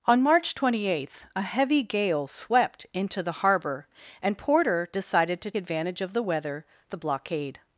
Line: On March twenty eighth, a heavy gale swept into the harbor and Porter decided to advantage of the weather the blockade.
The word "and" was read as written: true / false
true